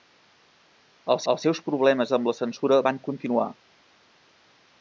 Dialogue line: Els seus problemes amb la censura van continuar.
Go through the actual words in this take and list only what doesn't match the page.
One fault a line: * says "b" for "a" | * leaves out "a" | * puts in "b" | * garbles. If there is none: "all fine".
* puts in "els"